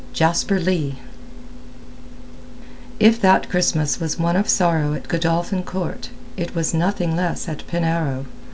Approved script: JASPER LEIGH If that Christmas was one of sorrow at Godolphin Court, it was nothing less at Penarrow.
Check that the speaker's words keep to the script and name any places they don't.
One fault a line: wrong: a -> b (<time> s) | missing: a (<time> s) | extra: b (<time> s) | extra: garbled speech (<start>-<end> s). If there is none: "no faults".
no faults